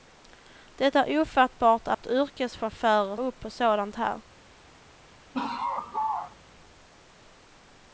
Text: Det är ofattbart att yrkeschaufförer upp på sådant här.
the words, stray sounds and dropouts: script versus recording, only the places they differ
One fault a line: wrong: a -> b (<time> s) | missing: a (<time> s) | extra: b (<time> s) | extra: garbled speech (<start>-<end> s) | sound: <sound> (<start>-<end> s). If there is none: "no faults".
sound: dropout (1.9-2.0 s)
sound: laugh (5.3-6.4 s)